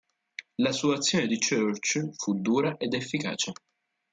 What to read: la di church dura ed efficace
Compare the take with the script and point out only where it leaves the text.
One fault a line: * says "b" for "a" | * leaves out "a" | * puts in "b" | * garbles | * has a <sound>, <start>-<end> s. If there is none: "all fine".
* puts in "sua azione"
* puts in "fu"